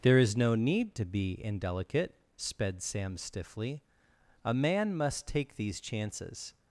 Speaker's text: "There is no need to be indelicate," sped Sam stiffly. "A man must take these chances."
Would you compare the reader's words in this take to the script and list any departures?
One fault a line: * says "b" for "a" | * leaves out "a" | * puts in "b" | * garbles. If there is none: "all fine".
all fine